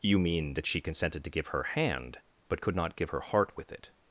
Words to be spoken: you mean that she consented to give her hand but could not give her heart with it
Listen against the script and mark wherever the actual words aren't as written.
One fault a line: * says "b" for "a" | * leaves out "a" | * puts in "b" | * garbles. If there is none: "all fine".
all fine